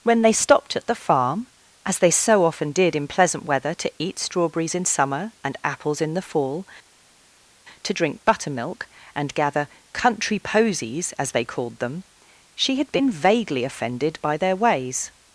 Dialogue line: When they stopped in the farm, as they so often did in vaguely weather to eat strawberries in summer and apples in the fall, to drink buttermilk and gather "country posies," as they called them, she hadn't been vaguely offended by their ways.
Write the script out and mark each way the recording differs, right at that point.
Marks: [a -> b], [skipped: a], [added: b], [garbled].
When they stopped [in -> at] the farm, as they so often did in [vaguely -> pleasant] weather to eat strawberries in summer and apples in the fall, to drink buttermilk and gather "country posies," as they called them, she [hadn't -> had] been vaguely offended by their ways.